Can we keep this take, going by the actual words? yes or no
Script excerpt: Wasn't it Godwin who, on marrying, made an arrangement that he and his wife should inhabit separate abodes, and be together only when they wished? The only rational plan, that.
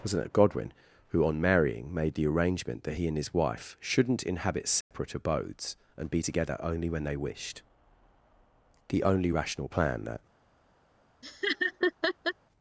no